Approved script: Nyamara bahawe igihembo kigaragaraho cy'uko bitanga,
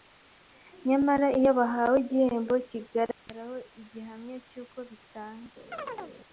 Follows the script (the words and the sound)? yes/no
no